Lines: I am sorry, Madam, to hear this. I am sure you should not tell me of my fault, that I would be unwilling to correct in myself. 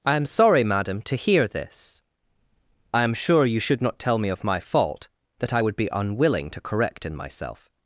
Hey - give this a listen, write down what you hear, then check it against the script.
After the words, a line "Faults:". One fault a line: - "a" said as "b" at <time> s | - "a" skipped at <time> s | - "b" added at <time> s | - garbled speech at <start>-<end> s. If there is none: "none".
I am sorry, Madam, to hear this. I am sure you should not tell me of my fault, that I would be unwilling to correct in myself.
Faults:
none